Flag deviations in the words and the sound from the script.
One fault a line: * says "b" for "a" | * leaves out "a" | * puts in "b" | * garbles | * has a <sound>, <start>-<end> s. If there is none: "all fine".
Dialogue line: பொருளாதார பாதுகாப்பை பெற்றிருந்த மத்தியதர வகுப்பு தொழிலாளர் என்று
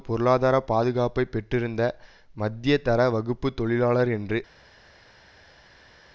all fine